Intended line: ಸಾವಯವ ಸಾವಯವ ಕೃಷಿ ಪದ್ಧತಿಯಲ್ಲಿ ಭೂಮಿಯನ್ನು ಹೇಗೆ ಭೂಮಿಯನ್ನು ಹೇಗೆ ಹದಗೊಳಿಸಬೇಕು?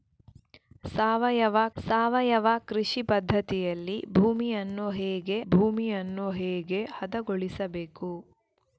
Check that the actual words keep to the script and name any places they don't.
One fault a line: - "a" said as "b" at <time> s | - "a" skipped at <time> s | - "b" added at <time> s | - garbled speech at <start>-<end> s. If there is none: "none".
none